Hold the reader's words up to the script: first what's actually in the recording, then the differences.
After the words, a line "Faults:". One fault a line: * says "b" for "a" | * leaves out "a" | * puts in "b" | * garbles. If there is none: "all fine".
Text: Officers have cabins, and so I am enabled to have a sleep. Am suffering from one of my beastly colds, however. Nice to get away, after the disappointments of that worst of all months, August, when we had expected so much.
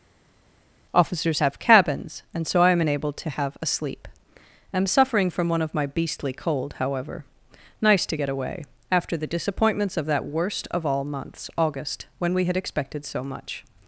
Officers have cabins, and so I am enabled to have a sleep. Am suffering from one of my beastly cold, however. Nice to get away, after the disappointments of that worst of all months, August, when we had expected so much.
Faults:
* says "cold" for "colds"